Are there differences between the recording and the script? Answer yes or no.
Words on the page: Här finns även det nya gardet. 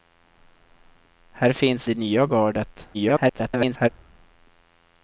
yes